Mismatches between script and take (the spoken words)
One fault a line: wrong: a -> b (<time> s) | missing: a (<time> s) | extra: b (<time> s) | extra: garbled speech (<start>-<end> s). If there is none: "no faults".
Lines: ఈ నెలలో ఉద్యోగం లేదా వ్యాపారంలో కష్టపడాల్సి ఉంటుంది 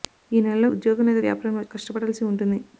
no faults